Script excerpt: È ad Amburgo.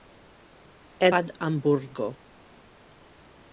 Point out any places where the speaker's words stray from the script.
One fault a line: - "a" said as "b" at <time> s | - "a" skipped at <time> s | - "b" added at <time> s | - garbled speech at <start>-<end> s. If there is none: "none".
none